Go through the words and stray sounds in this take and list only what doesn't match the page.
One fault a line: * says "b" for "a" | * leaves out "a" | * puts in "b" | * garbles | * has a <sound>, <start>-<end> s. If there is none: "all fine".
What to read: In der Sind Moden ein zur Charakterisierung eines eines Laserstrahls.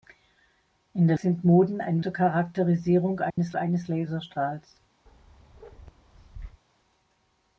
* has a dropout, 3.3-3.4 s
* has a bark, 5.1-6.6 s